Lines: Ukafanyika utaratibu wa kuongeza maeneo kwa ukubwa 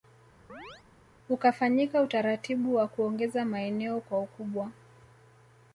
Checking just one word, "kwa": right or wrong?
right